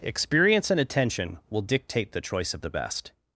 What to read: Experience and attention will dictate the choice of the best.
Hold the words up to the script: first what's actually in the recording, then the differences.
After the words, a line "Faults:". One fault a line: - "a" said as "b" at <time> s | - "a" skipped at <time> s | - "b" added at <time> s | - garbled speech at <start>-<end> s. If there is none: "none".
Experience and attention will dictate the choice of the best.
Faults:
none